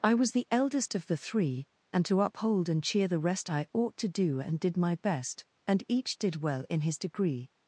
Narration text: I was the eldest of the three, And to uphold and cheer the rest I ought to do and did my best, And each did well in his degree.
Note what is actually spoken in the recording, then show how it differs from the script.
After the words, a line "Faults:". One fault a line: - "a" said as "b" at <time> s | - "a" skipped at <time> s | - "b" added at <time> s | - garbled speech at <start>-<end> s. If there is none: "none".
I was the eldest of the three, And to uphold and cheer the rest I ought to do and did my best, And each did well in his degree.
Faults:
none